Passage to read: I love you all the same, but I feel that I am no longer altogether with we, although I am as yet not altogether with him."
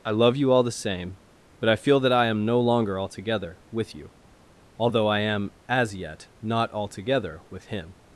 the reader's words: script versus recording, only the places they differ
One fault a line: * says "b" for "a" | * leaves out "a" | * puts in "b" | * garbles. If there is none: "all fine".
* says "you" for "we"